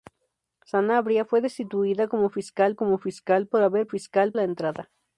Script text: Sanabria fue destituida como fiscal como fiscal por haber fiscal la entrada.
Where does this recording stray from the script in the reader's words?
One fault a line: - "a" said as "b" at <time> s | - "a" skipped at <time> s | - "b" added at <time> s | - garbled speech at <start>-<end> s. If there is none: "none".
none